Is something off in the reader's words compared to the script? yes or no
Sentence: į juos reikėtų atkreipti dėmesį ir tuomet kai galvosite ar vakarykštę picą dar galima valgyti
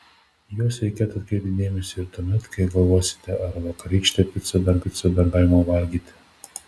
yes